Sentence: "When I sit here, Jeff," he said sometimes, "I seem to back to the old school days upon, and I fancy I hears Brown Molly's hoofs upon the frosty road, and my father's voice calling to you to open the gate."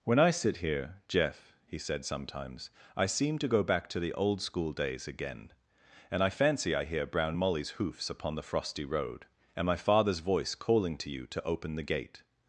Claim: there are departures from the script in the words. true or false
true